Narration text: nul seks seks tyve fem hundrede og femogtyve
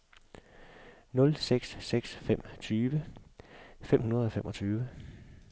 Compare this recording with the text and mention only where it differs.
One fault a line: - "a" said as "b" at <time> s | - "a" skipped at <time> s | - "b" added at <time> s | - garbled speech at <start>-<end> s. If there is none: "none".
- "fem" added at 2.2 s